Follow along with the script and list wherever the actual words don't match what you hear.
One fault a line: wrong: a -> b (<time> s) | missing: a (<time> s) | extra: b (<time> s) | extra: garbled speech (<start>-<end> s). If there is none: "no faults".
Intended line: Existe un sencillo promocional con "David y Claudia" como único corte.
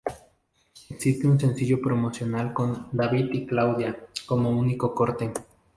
no faults